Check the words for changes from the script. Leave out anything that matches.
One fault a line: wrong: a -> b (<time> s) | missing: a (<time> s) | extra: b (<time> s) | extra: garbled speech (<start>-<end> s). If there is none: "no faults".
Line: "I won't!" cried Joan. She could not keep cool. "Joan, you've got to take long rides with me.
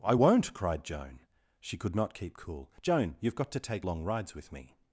no faults